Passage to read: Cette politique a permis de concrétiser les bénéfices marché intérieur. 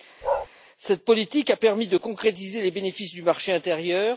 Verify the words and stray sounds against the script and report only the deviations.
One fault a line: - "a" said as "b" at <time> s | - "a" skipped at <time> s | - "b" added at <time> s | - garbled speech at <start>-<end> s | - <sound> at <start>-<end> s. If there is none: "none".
- bark at 0.2-0.5 s
- "du" added at 3.1 s